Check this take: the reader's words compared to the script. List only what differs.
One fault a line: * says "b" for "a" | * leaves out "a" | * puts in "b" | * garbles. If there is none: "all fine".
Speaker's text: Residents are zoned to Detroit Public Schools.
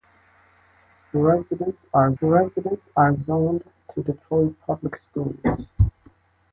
* puts in "residents are"